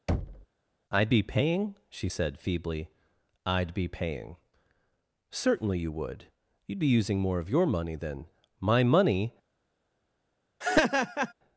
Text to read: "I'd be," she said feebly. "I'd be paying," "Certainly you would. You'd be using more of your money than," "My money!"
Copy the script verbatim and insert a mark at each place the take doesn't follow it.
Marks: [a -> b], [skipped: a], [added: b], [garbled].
"I'd be," [added: paying] she said feebly. "I'd be paying," "Certainly you would. You'd be using more of your money than," "My money!"